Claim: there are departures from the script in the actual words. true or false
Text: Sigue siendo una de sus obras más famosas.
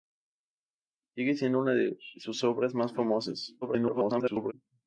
true